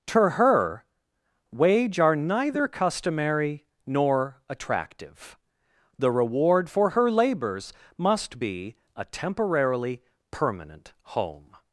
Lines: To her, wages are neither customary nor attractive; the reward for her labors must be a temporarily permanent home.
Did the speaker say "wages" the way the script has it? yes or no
no